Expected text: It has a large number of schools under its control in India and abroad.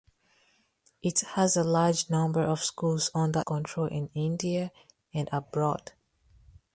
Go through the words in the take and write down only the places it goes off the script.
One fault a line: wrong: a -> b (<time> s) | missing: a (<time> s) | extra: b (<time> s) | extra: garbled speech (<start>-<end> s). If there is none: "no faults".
missing: its (3.4 s)